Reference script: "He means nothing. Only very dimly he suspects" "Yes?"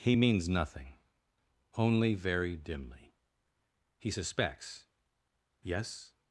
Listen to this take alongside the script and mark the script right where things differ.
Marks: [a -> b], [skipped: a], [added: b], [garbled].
"He means nothing. Only very dimly he suspects" "Yes?"